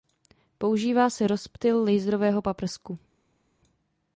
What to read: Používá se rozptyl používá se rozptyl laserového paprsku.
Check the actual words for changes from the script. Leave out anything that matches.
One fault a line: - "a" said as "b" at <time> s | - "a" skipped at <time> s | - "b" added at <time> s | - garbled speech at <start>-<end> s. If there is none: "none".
- "používá se rozptyl" skipped at 1.8 s